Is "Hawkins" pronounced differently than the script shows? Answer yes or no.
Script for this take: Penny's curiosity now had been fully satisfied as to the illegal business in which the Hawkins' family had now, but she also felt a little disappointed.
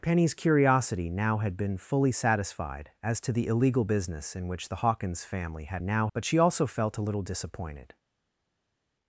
no